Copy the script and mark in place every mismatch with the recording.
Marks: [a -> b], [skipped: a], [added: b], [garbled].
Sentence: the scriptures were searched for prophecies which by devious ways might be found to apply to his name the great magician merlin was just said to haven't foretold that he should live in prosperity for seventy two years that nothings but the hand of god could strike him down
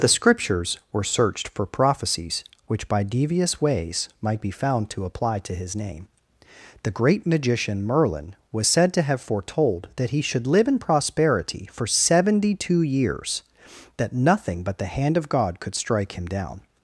the scriptures were searched for prophecies which by devious ways might be found to apply to his name the great magician merlin was [skipped: just] said to [haven't -> have] foretold that he should live in prosperity for seventy two years that [nothings -> nothing] but the hand of god could strike him down